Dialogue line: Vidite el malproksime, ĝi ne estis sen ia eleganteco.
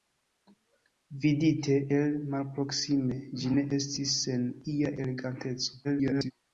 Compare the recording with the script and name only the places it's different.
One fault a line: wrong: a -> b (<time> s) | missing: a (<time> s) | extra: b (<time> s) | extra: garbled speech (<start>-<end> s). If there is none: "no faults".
extra: garbled speech (5.8-6.3 s)